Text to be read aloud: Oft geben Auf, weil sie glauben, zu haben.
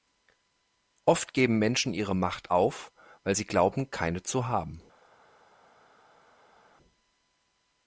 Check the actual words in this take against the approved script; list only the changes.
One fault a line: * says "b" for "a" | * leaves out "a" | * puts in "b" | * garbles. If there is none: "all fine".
* puts in "Menschen ihre Macht"
* puts in "keine"